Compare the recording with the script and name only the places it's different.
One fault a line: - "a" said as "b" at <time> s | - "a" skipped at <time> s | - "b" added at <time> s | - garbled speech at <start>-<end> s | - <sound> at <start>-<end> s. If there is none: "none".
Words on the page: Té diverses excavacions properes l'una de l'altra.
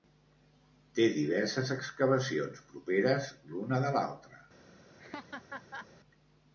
- laugh at 5.0-5.9 s